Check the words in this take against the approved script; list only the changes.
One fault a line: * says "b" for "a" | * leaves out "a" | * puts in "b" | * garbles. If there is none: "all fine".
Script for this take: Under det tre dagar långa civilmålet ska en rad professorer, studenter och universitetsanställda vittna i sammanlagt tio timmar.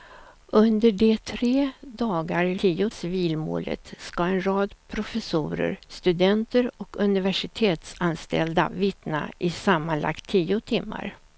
* says "tio" for "långa"